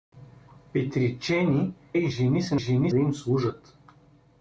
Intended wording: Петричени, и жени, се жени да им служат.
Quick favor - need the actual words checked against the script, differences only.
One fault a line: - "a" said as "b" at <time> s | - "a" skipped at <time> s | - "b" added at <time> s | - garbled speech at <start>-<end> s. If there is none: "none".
none